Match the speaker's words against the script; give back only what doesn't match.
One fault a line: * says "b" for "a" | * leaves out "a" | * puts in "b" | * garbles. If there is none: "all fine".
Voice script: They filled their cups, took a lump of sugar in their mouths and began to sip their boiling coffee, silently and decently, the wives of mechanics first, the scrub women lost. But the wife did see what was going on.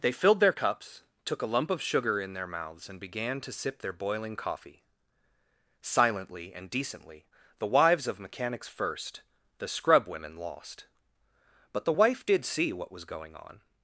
all fine